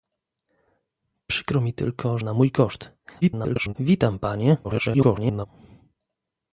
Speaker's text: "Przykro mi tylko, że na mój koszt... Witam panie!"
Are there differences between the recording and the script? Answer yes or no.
yes